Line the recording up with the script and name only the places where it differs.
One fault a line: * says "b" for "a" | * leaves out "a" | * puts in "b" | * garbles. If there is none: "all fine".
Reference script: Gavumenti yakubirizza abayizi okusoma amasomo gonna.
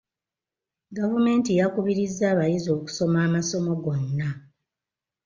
all fine